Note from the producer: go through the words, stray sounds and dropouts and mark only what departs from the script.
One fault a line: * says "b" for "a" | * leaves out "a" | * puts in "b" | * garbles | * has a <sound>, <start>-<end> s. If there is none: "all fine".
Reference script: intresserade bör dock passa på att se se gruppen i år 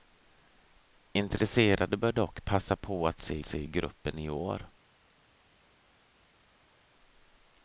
all fine